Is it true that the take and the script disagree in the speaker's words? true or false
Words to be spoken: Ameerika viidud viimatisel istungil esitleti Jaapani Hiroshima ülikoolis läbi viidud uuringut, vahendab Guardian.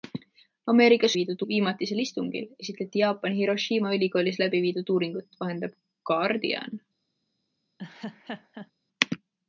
false